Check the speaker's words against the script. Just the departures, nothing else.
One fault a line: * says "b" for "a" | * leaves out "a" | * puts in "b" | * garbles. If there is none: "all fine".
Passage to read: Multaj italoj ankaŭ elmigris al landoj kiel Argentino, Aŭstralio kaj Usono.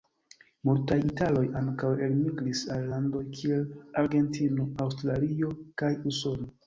all fine